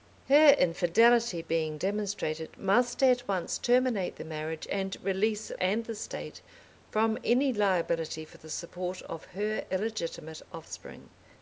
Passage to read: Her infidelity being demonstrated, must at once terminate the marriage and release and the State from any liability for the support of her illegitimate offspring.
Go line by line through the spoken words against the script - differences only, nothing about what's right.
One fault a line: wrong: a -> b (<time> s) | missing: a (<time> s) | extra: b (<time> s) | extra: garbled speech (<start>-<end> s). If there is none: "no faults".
no faults